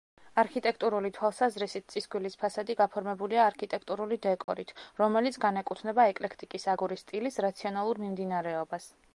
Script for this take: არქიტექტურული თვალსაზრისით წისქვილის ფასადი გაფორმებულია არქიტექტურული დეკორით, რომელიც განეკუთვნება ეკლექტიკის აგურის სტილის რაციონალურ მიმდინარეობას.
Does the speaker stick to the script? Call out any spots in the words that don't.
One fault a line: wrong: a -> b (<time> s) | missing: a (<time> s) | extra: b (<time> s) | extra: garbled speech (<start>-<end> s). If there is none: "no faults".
no faults